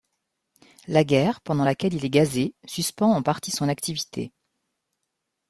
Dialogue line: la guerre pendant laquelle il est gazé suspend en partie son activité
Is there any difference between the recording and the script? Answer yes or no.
no